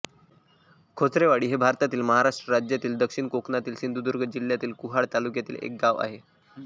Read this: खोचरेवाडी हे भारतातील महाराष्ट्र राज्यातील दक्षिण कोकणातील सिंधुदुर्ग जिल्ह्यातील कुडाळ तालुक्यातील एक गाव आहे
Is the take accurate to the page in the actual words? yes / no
yes